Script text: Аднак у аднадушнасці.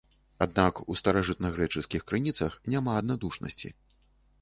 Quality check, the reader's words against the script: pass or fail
fail